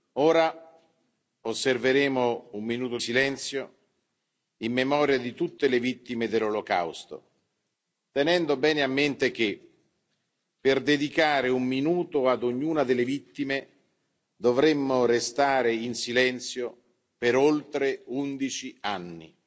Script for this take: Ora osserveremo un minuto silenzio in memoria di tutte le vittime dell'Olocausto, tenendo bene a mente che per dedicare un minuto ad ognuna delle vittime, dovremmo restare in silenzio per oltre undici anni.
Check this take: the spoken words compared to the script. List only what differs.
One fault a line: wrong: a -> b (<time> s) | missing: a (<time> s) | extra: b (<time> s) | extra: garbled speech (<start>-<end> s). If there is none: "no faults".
no faults